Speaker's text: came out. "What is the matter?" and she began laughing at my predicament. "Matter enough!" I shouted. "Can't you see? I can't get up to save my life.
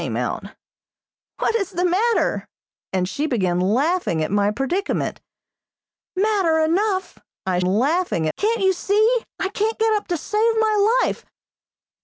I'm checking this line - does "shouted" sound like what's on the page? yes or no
no